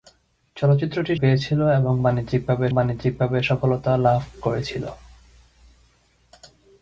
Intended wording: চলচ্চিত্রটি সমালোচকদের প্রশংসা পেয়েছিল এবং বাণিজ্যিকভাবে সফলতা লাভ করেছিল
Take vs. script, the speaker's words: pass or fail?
fail